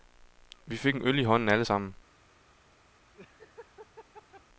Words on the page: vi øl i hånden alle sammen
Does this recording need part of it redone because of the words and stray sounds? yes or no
yes